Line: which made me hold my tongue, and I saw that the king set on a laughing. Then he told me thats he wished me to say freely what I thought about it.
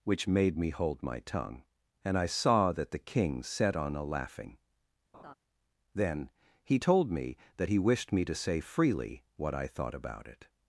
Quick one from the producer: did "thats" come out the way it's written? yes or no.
no